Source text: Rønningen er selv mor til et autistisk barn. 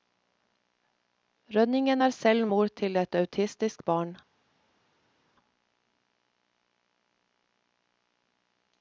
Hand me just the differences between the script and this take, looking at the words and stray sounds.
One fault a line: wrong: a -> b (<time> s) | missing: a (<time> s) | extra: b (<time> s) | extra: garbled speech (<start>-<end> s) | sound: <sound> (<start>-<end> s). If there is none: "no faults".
no faults